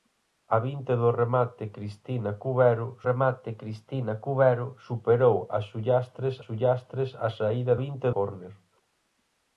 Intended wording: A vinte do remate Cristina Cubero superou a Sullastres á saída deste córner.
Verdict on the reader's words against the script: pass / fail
fail